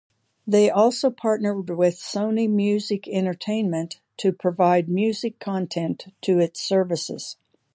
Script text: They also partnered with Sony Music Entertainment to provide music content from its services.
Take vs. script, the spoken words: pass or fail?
fail